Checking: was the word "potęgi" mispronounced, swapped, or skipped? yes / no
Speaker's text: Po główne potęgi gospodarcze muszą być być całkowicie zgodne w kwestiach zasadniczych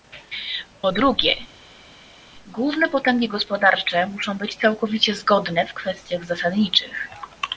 no